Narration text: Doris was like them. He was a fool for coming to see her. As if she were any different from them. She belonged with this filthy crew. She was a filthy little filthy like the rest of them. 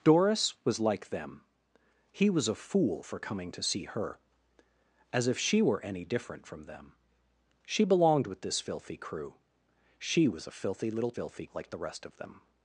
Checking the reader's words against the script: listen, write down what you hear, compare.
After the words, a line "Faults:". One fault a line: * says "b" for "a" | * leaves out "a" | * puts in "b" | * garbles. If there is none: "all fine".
Doris was like them. He was a fool for coming to see her. As if she were any different from them. She belonged with this filthy crew. She was a filthy little filthy like the rest of them.
Faults:
all fine